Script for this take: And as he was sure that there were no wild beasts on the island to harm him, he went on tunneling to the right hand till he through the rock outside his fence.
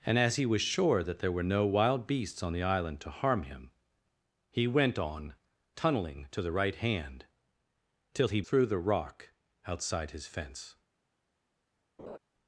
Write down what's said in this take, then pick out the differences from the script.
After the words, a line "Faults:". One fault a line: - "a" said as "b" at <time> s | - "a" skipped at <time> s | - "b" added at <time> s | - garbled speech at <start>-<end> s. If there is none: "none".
And as he was sure that there were no wild beasts on the island to harm him, he went on tunneling to the right hand till he through the rock outside his fence.
Faults:
none